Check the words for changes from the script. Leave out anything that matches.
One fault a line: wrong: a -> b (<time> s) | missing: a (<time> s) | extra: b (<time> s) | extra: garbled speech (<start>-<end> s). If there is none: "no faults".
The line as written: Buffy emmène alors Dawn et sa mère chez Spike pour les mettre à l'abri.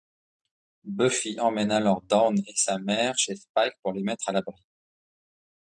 no faults